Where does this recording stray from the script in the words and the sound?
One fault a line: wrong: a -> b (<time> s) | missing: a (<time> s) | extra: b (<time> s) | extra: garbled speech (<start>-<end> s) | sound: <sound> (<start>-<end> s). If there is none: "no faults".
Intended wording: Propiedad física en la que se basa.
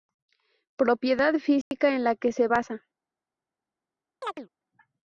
sound: dropout (1.6-1.7 s)
sound: chirp (4.2-4.5 s)